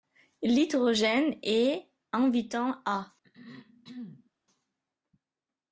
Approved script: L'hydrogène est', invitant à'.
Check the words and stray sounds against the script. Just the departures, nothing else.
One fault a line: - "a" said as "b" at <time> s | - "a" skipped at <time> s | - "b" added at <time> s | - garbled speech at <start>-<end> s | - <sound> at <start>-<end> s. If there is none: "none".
- throat clearing at 3.2-4.3 s